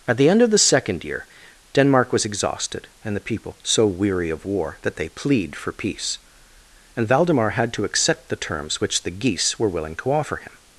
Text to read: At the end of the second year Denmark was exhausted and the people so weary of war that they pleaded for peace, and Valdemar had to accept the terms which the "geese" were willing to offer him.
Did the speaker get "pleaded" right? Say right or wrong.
wrong